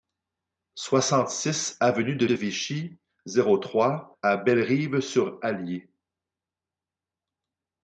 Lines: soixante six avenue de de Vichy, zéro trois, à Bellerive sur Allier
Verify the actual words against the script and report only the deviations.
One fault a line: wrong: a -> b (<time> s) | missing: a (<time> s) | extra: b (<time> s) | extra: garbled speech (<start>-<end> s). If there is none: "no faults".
no faults